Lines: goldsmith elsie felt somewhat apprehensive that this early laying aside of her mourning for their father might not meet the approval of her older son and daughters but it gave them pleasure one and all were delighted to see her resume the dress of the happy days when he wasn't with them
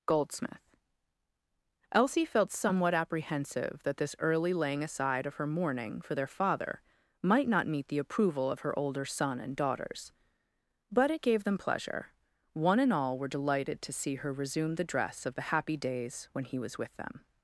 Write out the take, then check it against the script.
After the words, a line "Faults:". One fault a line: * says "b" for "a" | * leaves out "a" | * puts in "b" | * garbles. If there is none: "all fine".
goldsmith elsie felt somewhat apprehensive that this early laying aside of her mourning for their father might not meet the approval of her older son and daughters but it gave them pleasure one and all were delighted to see her resume the dress of the happy days when he was with them
Faults:
* says "was" for "wasn't"